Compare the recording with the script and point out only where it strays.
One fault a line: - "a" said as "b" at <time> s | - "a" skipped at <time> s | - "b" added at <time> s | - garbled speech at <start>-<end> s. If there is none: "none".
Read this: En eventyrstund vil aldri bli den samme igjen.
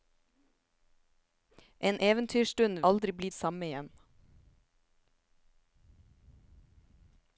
- "vil" skipped at 2.8 s
- "den" skipped at 3.3 s